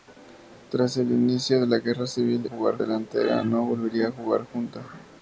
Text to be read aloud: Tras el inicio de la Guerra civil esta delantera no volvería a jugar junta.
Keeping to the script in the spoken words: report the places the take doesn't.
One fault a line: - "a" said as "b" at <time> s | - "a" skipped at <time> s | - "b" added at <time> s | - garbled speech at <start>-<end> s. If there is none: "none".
- "esta" said as "jugar" at 2.5 s